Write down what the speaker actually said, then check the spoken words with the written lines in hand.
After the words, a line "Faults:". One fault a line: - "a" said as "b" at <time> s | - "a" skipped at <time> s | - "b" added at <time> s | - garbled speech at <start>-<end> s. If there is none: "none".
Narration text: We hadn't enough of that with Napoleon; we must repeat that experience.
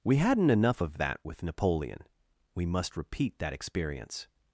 We hadn't enough of that with Napoleon; we must repeat that experience.
Faults:
none